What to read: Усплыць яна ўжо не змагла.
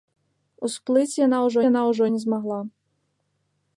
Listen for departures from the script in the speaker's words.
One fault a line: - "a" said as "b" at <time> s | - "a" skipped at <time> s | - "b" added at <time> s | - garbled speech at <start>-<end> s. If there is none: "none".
- "яна ўжо" added at 1.7 s